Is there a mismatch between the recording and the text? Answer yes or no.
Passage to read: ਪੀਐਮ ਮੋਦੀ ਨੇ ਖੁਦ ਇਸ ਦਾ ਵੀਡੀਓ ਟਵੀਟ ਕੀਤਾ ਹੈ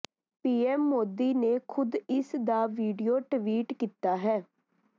no